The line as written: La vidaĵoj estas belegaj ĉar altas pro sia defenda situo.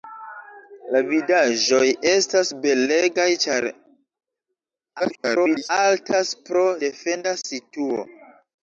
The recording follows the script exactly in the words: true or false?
false